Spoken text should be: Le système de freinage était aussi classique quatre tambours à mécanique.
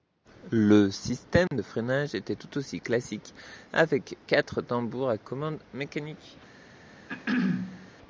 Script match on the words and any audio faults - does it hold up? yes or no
no